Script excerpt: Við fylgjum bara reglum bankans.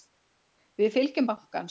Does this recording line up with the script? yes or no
no